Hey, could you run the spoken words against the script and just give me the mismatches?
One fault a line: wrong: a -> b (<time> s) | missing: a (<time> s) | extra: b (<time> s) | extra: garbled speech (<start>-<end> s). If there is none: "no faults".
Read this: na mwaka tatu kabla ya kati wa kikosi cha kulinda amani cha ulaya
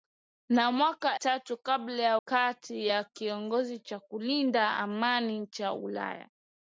no faults